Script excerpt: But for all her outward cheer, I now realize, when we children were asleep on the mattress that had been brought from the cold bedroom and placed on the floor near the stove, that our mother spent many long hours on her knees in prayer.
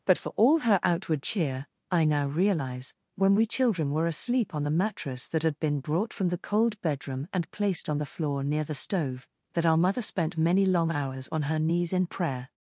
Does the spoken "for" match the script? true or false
true